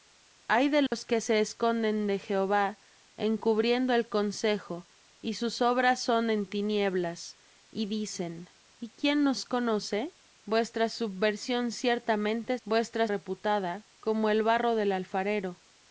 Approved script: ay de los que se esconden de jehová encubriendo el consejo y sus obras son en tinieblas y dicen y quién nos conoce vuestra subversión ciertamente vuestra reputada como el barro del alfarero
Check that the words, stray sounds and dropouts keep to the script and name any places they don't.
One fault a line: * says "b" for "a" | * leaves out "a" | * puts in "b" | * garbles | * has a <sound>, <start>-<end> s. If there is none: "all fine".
* has a dropout, 0.9-0.9 s